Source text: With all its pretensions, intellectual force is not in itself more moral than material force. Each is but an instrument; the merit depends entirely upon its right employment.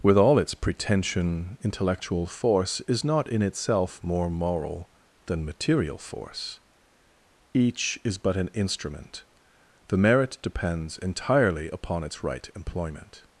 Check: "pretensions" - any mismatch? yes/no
yes